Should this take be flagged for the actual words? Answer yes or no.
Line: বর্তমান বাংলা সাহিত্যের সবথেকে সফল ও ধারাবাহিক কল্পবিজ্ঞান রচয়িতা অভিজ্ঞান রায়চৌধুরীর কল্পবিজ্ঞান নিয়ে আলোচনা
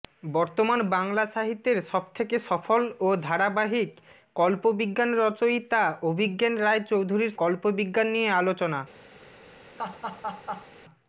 no